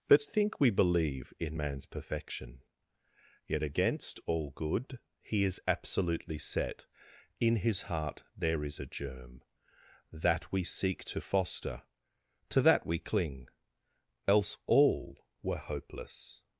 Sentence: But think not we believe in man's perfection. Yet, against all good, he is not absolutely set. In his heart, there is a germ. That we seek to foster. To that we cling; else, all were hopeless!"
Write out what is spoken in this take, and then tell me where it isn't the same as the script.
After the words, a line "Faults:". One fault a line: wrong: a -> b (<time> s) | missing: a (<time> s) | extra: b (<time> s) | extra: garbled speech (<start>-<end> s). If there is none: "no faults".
But think we believe in man's perfection. Yet, against all good, he is absolutely set. In his heart, there is a germ. That we seek to foster. To that we cling; else, all were hopeless!"
Faults:
missing: not (0.6 s)
missing: not (5.6 s)